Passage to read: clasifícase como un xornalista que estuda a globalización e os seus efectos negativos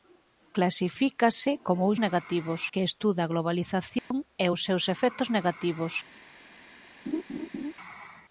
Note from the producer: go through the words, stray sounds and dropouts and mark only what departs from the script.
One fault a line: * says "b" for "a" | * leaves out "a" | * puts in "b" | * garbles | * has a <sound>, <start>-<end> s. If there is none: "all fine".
* says "negativos" for "xornalista"
* has a dropout, 4.0-4.1 s
* has a laugh, 7.1-7.7 s